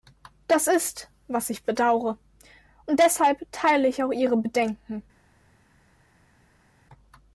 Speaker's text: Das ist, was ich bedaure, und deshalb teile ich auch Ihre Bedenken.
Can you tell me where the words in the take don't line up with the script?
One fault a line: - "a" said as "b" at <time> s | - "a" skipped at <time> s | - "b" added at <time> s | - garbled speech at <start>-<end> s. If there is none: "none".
none